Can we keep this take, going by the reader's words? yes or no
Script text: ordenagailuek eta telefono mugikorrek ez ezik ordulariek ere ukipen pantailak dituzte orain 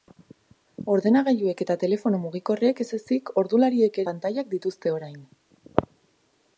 no